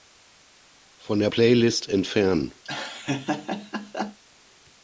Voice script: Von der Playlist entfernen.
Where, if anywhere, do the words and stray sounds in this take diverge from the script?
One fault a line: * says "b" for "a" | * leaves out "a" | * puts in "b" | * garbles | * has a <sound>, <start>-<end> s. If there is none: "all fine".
* has a laugh, 2.6-4.2 s